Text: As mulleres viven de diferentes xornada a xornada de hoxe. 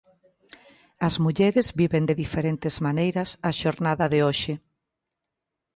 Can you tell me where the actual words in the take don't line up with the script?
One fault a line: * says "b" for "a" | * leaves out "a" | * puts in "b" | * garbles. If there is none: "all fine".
* says "maneiras" for "xornada"